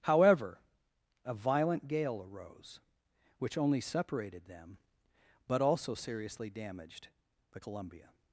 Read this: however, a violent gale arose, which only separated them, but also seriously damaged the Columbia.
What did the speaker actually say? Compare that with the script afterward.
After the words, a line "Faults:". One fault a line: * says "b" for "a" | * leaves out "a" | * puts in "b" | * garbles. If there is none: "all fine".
however, a violent gale arose, which only separated them, but also seriously damaged the Columbia.
Faults:
all fine